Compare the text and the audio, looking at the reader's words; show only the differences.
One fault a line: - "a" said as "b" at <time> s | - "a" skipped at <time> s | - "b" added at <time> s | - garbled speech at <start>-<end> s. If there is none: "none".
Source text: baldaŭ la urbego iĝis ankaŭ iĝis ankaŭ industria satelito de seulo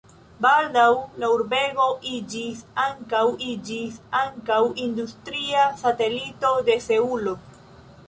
none